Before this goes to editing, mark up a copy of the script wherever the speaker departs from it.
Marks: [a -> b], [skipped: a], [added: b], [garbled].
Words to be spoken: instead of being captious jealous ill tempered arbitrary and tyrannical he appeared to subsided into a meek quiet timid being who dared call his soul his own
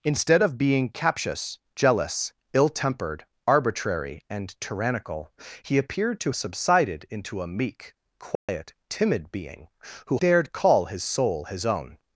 instead of being captious jealous ill tempered arbitrary and tyrannical he appeared to subsided into a meek quiet timid being who dared call his soul his own